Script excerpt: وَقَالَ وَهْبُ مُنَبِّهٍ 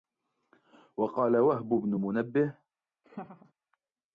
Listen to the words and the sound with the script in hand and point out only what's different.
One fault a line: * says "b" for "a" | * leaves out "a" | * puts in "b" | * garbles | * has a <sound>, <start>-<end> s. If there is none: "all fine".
* puts in "بْنُ"
* has a laugh, 3.0-3.5 s